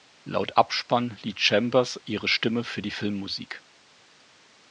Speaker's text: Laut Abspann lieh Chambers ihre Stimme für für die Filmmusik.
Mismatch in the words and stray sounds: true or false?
true